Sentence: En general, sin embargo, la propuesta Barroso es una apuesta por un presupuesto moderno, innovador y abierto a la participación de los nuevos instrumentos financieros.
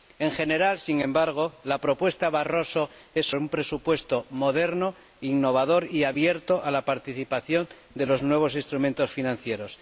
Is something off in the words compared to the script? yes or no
yes